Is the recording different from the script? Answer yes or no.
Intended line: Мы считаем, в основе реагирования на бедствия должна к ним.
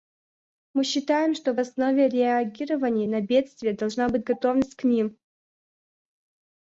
yes